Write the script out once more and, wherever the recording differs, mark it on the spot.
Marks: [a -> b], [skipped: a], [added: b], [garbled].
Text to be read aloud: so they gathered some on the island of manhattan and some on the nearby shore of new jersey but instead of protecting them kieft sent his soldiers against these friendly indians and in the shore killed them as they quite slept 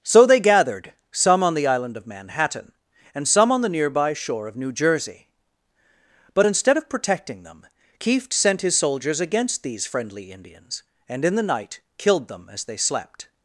so they gathered some on the island of manhattan and some on the nearby shore of new jersey but instead of protecting them kieft sent his soldiers against these friendly indians and in the [shore -> night] killed them as they [skipped: quite] slept